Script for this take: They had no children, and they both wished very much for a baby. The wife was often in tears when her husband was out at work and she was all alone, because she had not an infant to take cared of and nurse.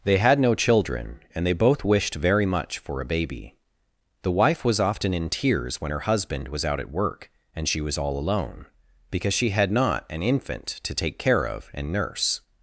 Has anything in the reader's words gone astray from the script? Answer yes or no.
yes